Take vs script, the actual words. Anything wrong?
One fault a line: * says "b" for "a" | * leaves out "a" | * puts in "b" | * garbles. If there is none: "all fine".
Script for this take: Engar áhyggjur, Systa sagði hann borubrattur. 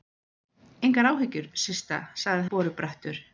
* leaves out "hann"